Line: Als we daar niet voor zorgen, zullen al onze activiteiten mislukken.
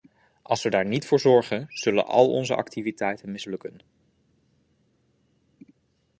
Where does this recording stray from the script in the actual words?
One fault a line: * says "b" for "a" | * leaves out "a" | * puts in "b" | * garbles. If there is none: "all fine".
all fine